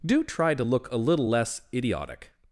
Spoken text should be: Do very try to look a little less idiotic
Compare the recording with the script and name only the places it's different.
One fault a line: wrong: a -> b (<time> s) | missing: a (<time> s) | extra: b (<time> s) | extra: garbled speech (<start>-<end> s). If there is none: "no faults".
missing: very (0.2 s)